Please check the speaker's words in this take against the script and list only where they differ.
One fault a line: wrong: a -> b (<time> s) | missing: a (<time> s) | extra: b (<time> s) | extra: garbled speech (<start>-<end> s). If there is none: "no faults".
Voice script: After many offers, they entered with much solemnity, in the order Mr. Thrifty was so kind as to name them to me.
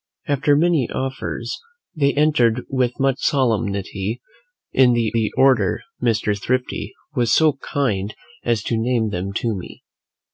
extra: the (5.1 s)